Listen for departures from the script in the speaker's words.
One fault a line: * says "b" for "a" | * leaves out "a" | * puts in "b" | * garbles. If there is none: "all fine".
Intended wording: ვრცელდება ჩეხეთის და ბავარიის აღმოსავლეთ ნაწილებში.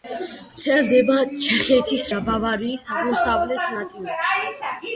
all fine